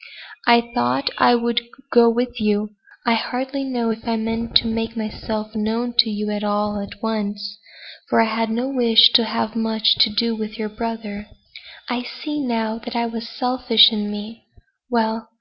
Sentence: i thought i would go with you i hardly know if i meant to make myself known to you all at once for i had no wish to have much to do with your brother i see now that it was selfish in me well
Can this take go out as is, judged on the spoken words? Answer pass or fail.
pass